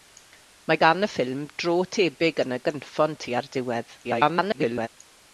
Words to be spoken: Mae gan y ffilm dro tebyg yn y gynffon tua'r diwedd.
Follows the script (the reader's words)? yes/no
no